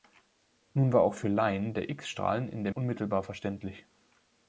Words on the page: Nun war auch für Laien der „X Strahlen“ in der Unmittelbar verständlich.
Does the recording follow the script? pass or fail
pass